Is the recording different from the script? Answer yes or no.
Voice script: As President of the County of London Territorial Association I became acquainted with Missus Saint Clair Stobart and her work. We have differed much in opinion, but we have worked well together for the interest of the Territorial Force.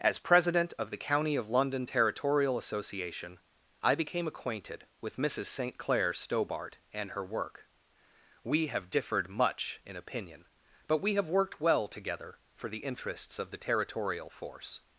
yes